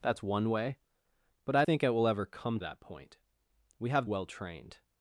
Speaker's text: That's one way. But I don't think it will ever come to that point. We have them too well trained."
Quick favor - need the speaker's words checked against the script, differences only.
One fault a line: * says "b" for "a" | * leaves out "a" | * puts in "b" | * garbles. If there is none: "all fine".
* leaves out "don't"
* leaves out "to"
* leaves out "them too"